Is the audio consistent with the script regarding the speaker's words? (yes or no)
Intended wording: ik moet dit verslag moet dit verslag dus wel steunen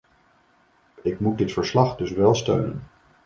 no